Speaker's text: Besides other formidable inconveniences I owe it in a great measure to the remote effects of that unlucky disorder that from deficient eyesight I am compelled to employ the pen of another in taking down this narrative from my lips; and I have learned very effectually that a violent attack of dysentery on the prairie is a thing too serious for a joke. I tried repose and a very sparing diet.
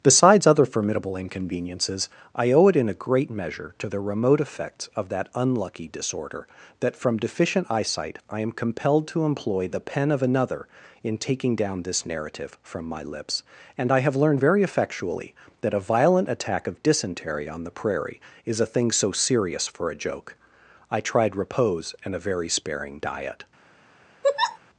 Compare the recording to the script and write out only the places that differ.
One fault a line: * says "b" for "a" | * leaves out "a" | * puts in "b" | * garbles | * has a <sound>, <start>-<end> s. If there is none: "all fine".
* says "so" for "too"
* has a laugh, 24.2-24.6 s